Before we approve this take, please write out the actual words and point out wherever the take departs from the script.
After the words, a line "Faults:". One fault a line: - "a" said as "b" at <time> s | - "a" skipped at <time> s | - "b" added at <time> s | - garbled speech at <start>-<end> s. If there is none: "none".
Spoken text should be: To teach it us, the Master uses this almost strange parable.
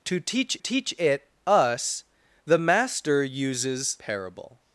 To teach teach it us, the Master uses parable.
Faults:
- "teach" added at 0.6 s
- "this almost strange" skipped at 4.0 s